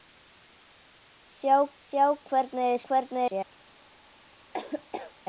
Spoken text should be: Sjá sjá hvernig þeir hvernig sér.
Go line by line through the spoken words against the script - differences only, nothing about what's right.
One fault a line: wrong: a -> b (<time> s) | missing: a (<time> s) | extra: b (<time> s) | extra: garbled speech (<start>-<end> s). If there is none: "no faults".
no faults